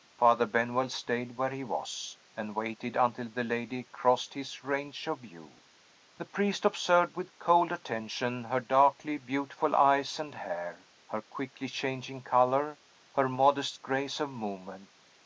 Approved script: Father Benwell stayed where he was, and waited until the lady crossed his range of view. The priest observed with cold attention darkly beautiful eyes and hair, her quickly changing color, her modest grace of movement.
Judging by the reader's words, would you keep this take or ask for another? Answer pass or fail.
fail